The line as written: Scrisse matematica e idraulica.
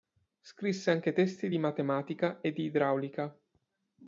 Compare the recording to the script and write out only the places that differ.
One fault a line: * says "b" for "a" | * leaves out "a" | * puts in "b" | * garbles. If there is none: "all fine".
* puts in "anche testi di"
* puts in "di"